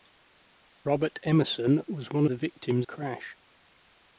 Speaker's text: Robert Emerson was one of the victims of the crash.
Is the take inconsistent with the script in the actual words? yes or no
yes